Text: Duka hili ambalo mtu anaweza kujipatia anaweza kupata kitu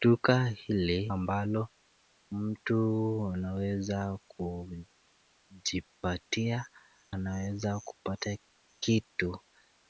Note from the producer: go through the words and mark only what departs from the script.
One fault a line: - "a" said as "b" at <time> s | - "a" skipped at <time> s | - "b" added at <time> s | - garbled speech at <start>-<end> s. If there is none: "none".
none